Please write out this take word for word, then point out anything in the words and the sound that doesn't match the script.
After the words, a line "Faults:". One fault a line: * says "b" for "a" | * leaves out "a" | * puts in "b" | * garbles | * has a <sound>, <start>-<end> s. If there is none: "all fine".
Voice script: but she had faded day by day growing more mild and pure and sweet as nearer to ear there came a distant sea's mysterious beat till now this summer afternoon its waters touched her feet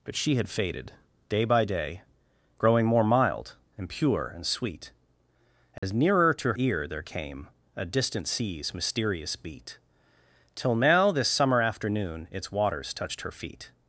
but she had faded day by day growing more mild and pure and sweet as nearer to ear there came a distant sea's mysterious beat till now this summer afternoon its waters touched her feet
Faults:
* has a dropout, 5.8-5.8 s